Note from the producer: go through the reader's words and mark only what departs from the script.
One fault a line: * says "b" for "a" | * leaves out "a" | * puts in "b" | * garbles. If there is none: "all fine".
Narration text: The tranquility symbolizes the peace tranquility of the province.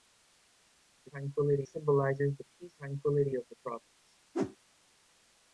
all fine